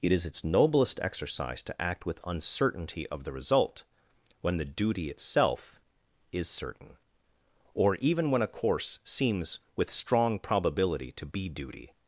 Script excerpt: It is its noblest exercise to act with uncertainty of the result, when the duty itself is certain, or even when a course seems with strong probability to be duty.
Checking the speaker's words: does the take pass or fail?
pass